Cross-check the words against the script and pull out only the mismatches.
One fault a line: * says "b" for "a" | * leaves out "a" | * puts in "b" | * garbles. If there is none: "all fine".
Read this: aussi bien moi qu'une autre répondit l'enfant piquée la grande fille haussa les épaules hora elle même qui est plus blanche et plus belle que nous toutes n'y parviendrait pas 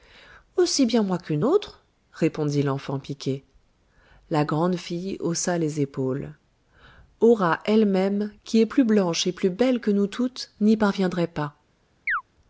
all fine